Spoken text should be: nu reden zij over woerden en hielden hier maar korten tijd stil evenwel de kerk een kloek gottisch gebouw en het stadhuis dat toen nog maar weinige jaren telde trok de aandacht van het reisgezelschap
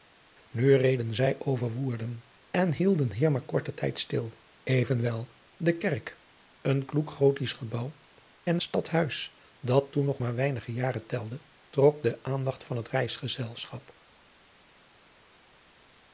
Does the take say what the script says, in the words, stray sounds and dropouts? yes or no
no